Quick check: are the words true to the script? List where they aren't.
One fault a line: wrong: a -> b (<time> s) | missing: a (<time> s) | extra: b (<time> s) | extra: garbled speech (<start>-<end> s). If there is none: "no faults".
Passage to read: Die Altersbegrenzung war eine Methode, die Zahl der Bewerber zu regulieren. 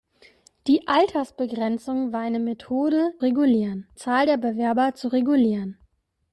wrong: die -> regulieren (3.2 s)